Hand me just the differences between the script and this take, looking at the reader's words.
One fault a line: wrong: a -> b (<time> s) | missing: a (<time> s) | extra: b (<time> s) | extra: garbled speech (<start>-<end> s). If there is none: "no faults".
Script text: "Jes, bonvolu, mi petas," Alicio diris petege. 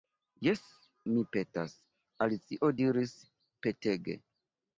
missing: bonvolu (0.6 s)